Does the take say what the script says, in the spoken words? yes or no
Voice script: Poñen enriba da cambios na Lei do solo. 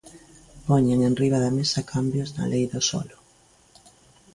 no